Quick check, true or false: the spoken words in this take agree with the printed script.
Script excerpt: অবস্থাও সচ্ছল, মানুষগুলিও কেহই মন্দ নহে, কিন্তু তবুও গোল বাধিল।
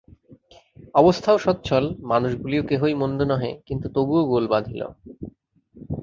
true